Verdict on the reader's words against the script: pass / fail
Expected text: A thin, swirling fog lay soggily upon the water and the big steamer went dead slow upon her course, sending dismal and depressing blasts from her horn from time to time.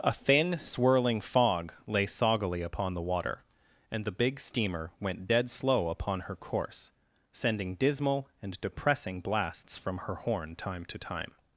fail